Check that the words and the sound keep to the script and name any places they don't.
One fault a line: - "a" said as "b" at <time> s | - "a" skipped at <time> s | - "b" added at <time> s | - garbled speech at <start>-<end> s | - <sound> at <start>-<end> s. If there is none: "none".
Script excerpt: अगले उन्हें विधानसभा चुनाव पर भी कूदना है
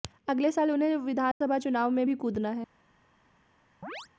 - "साल" added at 0.5 s
- dropout at 1.3-1.4 s
- "पर" said as "में" at 1.9 s
- chirp at 3.8-4.1 s